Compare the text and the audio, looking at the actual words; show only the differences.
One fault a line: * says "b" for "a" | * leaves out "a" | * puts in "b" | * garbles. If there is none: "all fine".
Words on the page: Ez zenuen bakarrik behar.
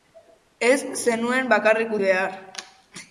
all fine